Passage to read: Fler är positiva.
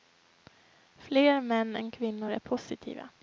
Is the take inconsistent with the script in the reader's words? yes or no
yes